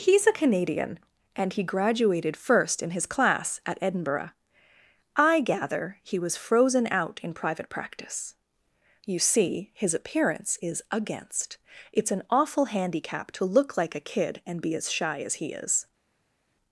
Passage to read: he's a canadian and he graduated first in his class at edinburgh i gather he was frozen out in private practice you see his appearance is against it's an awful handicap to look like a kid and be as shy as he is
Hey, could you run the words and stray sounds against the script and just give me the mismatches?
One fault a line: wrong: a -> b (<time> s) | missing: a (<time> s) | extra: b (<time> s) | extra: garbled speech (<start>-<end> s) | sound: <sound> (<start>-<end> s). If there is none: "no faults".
no faults